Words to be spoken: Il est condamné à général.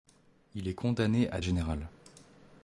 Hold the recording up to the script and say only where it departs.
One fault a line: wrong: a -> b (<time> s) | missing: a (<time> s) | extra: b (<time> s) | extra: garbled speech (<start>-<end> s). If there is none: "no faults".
no faults